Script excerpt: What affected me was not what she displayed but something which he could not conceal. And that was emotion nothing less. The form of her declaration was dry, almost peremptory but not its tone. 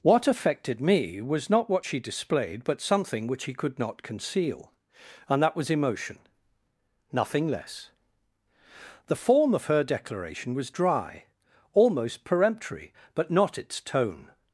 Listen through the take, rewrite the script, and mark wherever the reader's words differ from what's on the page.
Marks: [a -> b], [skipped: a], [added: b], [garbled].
What affected me was not what she displayed but something which he could not conceal. And that was emotion nothing less. The form of her declaration was dry, almost peremptory but not its tone.